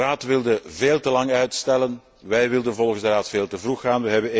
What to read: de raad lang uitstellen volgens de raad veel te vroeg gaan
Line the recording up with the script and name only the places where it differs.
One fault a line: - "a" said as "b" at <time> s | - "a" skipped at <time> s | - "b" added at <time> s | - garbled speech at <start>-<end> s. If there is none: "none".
- "wilde veel te" added at 0.2 s
- "wij wilden" added at 2.2 s